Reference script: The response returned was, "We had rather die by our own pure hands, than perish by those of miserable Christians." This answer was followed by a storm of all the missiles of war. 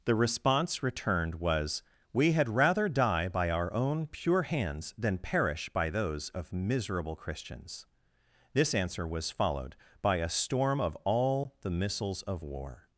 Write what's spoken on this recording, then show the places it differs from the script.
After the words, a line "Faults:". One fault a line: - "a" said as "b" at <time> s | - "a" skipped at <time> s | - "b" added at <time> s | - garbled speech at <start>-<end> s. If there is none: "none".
The response returned was, "We had rather die by our own pure hands, than perish by those of miserable Christians." This answer was followed by a storm of all the missiles of war.
Faults:
none